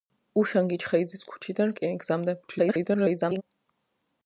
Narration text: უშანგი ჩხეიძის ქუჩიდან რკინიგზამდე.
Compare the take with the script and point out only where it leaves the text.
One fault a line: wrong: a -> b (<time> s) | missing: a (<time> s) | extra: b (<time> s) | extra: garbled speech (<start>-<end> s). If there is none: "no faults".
extra: garbled speech (2.4-3.4 s)